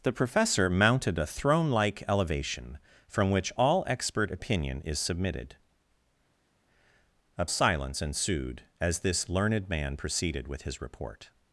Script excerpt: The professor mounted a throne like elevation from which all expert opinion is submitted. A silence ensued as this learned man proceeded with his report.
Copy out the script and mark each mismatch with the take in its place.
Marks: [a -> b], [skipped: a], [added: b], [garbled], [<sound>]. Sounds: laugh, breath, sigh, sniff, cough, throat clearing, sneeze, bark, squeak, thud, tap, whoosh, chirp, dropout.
The professor mounted a throne like elevation from which all expert opinion is submitted. A silence ensued as this learned man proceeded with his report.